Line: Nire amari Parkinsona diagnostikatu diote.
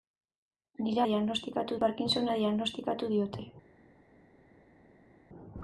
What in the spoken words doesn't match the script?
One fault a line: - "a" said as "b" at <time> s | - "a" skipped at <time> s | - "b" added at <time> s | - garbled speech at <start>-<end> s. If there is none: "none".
- "amari" said as "diagnostikatu" at 1.1 s